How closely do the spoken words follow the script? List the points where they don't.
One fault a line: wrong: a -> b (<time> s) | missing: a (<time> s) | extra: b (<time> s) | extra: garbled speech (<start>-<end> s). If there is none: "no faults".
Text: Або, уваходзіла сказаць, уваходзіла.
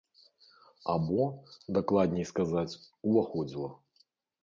wrong: уваходзіла -> дакладней (1.8 s)